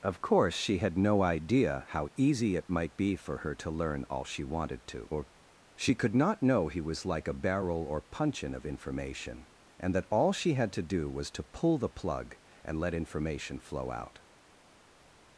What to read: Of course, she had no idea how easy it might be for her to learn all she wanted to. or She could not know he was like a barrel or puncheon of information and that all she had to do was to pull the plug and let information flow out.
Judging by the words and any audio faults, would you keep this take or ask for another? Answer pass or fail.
pass